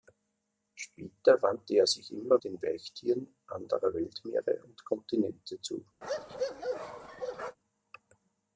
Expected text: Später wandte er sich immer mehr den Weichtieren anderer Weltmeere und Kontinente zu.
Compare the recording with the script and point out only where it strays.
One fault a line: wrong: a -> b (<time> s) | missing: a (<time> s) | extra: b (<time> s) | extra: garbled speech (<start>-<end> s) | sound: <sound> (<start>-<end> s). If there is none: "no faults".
missing: mehr (2.4 s)
sound: bark (6.0-7.6 s)